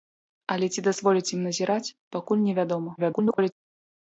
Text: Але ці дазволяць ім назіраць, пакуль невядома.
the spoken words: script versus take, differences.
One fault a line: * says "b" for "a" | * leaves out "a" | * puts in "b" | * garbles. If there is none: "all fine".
* garbles